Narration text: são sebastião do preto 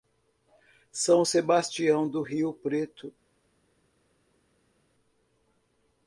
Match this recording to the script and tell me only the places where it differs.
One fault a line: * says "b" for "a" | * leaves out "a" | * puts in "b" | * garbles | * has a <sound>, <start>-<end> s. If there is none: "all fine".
* puts in "rio"